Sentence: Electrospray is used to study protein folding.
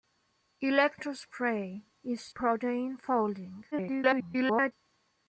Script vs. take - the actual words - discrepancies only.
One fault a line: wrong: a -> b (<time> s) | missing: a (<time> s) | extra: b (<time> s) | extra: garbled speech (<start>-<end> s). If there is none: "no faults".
missing: used to study (2.3 s)
extra: garbled speech (3.7-4.7 s)